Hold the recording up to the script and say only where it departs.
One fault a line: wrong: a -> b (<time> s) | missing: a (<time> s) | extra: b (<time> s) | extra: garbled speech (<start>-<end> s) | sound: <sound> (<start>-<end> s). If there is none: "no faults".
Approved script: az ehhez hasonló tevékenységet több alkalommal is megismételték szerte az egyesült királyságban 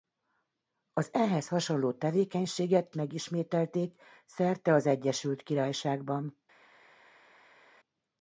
missing: több alkalommal is (2.9 s)